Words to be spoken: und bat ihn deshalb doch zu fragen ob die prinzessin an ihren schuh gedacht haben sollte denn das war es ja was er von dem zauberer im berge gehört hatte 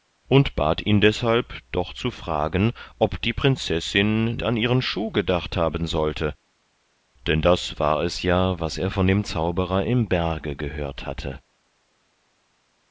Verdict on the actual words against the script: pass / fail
pass